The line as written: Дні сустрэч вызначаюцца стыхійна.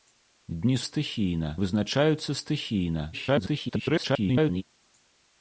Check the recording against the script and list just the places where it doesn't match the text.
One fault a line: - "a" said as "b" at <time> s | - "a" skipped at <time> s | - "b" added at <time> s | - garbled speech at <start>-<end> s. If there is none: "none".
- "сустрэч" said as "стыхійна" at 0.9 s
- garbled speech at 3.1-4.6 s